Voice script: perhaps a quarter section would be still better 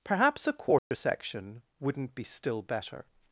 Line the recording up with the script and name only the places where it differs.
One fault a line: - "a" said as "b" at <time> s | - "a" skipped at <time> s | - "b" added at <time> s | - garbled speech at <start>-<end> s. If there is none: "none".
- "would" said as "wouldn't" at 1.8 s